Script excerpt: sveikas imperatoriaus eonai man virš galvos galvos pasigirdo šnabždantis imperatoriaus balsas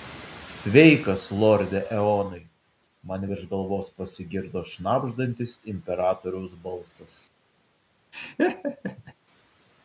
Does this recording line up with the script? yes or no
no